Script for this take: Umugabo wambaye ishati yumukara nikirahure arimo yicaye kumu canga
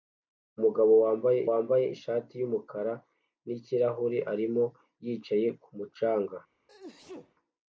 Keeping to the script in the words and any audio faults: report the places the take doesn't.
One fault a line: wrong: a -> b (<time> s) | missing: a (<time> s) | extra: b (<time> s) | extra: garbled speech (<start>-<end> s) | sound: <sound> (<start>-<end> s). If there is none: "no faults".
extra: wambaye (1.5 s)
sound: sneeze (6.7-7.3 s)